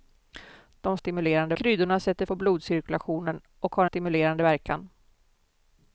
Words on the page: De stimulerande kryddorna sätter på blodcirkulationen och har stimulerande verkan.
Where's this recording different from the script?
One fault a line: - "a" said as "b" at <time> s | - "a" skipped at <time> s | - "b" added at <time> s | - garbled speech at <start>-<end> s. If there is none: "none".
none